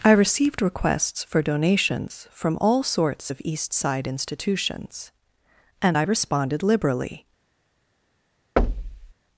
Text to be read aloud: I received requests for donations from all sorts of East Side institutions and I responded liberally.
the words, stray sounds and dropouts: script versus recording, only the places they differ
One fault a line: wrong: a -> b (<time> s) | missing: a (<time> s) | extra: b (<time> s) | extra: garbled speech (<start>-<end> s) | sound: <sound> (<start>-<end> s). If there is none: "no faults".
sound: thud (8.6-9.1 s)